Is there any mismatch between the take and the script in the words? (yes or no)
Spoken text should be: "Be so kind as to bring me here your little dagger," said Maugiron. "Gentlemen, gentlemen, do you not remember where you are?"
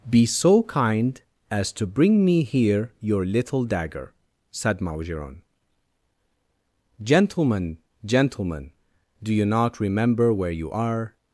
no